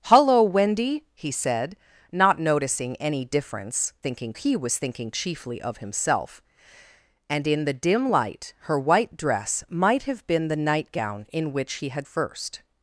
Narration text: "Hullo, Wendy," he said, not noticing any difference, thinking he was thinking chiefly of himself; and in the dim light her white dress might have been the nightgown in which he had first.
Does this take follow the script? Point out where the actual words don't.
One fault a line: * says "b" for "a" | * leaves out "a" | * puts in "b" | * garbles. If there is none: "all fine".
all fine